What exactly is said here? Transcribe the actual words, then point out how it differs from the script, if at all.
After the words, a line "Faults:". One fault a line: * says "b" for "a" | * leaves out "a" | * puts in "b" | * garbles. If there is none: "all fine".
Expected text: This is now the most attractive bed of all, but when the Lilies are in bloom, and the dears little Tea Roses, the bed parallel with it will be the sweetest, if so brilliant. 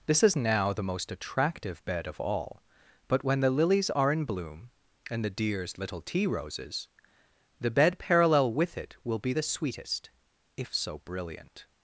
This is now the most attractive bed of all, but when the Lilies are in bloom, and the dears little Tea Roses, the bed parallel with it will be the sweetest, if so brilliant.
Faults:
all fine